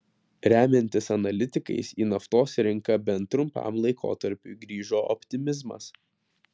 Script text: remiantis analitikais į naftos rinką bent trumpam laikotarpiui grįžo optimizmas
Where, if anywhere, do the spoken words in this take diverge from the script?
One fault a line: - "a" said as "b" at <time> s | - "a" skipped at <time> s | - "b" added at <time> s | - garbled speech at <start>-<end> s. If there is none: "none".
none